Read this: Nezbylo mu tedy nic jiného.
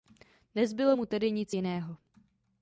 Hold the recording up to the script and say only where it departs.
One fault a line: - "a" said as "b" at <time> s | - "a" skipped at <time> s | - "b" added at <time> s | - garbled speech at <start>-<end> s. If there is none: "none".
none